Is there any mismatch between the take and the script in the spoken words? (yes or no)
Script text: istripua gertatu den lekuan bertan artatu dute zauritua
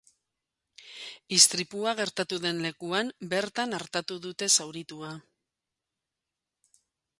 no